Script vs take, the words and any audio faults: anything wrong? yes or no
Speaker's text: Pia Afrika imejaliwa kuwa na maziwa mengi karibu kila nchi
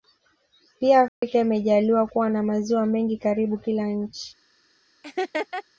yes